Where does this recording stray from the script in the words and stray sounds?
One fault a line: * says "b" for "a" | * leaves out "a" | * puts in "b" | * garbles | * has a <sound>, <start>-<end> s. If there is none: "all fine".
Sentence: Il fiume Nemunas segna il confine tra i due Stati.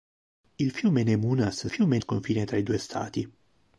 * says "fiume" for "segna"